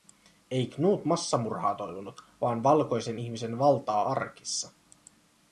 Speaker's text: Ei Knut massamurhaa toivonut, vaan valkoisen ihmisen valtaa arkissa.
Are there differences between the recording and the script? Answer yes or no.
no